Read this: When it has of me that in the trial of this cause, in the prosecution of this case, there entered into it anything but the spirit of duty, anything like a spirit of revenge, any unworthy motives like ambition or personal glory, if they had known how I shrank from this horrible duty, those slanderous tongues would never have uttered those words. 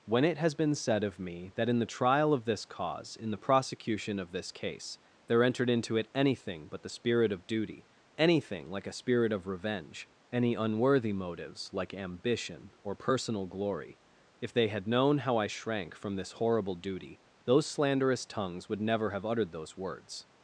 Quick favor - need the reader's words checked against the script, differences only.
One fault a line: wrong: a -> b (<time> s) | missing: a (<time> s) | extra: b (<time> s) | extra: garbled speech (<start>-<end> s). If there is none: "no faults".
extra: been said (0.6 s)